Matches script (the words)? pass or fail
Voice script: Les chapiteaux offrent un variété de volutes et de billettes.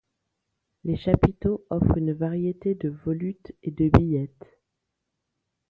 fail